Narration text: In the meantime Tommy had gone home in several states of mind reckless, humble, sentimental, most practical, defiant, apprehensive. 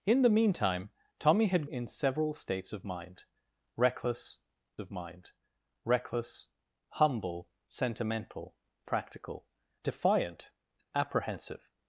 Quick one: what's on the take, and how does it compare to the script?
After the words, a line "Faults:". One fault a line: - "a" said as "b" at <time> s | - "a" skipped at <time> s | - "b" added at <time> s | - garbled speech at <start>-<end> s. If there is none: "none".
In the meantime Tommy had in several states of mind reckless of mind reckless, humble, sentimental, practical, defiant, apprehensive.
Faults:
- "gone home" skipped at 1.7 s
- "of mind reckless" added at 4.8 s
- "most" skipped at 8.6 s